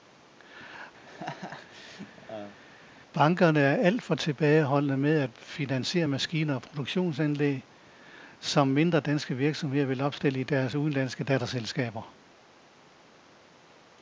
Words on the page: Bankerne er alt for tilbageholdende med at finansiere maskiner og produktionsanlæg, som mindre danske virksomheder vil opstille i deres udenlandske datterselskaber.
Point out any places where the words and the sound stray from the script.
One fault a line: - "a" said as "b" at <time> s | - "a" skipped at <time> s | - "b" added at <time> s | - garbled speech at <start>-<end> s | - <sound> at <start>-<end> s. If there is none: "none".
- laugh at 1.0-2.6 s